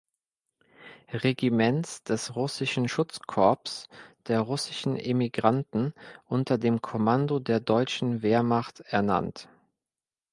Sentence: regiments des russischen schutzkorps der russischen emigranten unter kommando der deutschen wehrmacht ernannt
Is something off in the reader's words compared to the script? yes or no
yes